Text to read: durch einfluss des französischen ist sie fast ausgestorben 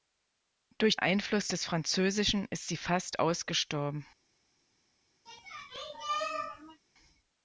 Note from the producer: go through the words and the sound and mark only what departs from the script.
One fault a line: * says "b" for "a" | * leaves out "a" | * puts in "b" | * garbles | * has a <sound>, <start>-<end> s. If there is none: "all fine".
* has a sneeze, 5.3-6.8 s